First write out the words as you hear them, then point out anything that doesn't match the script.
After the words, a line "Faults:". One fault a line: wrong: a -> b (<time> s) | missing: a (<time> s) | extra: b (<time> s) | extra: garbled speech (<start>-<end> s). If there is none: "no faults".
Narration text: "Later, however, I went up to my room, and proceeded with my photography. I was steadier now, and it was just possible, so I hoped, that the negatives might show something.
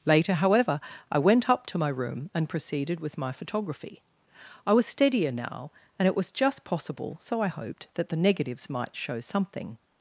"Later, however, I went up to my room, and proceeded with my photography. I was steadier now, and it was just possible, so I hoped, that the negatives might show something.
Faults:
no faults